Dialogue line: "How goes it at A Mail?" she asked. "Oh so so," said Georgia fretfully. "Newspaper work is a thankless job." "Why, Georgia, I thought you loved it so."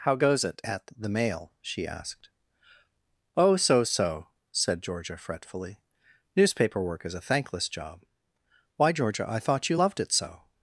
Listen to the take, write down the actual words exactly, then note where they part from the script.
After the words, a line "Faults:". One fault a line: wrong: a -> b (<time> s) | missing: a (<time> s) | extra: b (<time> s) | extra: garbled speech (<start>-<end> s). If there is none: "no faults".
"How goes it at The Mail?" she asked. "Oh so so," said Georgia fretfully. "Newspaper work is a thankless job." "Why, Georgia, I thought you loved it so."
Faults:
wrong: A -> The (1.0 s)